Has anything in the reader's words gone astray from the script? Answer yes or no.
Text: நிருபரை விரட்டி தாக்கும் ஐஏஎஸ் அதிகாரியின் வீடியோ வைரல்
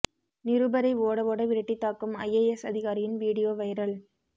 yes